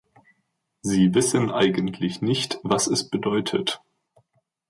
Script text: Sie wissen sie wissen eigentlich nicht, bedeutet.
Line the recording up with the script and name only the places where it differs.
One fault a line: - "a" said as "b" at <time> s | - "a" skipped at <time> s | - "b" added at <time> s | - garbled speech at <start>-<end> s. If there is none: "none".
- "sie wissen eigentlich nicht" said as "eigentlich nicht was es" at 1.5 s